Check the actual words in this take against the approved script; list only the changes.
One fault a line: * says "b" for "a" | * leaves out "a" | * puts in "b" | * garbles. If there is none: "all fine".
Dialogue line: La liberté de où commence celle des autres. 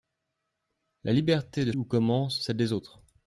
all fine